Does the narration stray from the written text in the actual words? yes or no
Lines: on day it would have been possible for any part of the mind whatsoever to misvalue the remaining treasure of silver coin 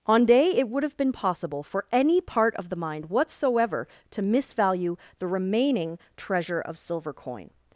no